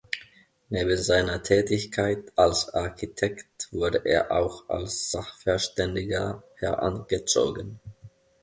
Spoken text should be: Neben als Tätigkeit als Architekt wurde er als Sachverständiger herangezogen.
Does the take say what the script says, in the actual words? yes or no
no